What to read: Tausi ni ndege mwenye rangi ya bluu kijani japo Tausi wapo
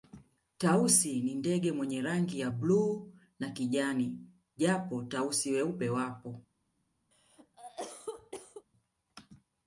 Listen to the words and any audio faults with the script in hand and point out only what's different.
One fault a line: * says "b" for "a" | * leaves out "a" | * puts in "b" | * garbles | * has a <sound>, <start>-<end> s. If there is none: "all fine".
* puts in "na"
* puts in "weupe"
* has a cough, 7.1-8.7 s